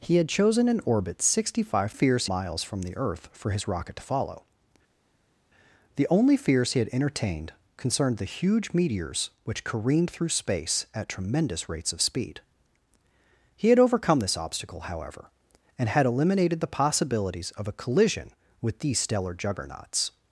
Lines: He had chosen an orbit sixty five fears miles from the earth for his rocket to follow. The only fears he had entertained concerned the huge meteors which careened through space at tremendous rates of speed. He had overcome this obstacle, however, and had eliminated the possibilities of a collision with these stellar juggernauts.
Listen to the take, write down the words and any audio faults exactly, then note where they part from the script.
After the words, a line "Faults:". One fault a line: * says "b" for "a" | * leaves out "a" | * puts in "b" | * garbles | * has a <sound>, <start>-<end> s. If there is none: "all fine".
He had chosen an orbit sixty five fears miles from the earth for his rocket to follow. The only fears he had entertained concerned the huge meteors which careened through space at tremendous rates of speed. He had overcome this obstacle, however, and had eliminated the possibilities of a collision with these stellar juggernauts.
Faults:
all fine